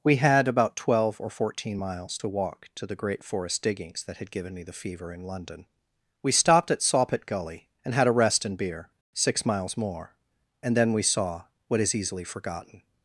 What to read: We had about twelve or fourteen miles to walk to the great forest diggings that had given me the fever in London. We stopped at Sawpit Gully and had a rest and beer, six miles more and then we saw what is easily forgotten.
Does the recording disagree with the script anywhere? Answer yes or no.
no